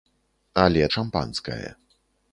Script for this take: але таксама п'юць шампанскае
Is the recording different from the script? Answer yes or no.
yes